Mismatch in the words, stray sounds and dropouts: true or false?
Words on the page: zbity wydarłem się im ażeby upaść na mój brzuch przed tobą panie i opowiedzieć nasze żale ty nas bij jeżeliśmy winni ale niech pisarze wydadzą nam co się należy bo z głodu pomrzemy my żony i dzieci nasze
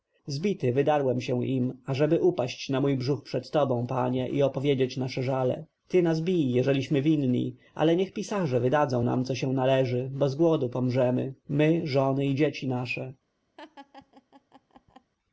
true